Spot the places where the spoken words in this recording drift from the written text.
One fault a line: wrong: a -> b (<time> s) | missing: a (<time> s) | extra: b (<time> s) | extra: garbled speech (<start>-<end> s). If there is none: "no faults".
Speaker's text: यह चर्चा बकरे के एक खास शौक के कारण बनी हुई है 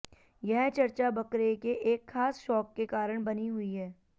no faults